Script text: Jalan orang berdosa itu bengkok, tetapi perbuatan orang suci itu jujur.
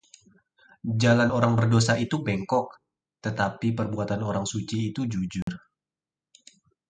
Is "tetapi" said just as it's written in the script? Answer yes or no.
yes